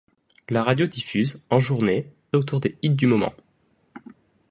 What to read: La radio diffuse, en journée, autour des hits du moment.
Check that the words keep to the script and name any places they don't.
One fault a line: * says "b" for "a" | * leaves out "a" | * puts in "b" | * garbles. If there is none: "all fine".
all fine